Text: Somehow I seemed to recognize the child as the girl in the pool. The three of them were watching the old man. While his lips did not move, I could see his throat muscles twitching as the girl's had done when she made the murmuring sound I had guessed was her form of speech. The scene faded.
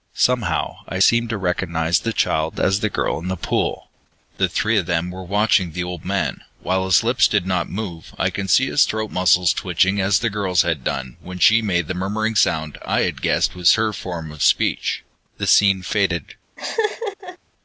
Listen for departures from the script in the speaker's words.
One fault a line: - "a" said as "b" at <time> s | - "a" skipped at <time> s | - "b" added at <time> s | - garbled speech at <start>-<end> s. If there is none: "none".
none